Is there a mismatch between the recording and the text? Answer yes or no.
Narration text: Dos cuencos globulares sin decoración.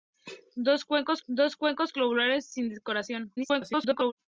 yes